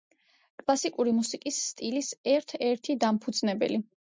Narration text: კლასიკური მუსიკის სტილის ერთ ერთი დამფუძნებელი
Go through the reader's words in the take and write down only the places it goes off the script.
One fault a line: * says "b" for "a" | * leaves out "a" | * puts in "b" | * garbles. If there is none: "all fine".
all fine